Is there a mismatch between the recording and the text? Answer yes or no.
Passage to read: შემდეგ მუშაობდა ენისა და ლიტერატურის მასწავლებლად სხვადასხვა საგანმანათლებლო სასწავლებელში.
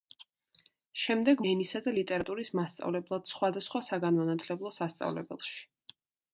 yes